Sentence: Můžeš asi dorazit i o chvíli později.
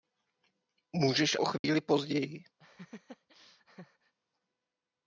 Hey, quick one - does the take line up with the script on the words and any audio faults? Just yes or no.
no